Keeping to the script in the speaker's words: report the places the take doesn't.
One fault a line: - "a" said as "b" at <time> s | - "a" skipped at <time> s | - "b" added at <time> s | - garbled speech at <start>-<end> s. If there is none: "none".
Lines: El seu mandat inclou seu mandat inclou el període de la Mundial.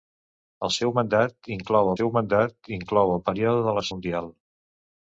none